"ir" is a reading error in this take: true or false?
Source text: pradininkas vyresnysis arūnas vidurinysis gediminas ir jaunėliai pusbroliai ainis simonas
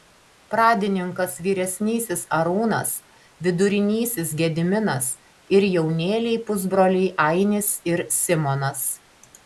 false